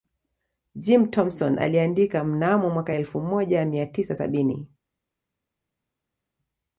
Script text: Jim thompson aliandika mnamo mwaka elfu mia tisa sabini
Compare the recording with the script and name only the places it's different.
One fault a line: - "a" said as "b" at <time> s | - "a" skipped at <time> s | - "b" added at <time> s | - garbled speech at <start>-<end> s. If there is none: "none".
- "moja" added at 3.2 s